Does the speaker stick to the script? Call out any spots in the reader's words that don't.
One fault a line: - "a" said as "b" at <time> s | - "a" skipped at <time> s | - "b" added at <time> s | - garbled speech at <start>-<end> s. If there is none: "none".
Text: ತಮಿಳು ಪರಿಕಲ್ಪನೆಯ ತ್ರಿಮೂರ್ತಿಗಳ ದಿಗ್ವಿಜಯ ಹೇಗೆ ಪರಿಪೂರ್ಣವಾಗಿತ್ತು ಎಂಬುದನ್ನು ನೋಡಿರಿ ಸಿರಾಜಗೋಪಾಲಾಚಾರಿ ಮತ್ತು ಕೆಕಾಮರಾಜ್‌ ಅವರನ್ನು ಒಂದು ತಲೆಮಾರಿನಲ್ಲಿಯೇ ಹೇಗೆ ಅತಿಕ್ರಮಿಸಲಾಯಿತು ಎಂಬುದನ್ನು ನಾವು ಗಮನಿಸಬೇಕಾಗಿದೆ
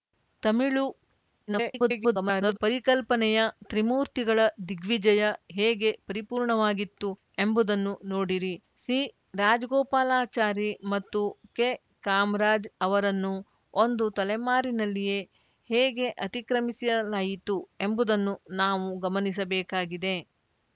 - garbled speech at 1.5-2.6 s